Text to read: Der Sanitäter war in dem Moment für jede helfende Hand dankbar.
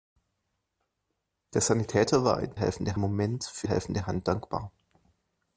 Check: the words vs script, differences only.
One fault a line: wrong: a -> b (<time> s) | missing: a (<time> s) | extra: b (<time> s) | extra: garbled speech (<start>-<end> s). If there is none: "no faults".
wrong: dem -> helfende (2.5 s)
missing: jede (3.7 s)